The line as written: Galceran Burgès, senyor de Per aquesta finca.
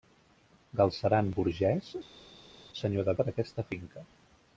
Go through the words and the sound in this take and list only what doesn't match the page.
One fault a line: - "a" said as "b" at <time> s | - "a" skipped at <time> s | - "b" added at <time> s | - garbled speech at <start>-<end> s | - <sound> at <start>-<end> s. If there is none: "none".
none